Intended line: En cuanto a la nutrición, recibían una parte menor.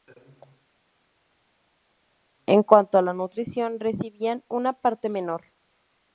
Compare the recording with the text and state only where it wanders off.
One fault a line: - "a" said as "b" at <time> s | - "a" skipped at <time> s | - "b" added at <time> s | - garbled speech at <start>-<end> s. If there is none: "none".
none